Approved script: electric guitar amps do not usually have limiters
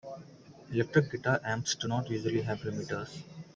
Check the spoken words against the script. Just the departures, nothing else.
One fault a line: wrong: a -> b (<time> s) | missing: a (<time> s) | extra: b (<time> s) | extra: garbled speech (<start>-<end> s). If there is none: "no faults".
no faults